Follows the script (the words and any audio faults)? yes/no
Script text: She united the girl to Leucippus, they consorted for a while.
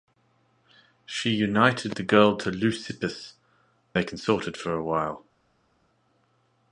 yes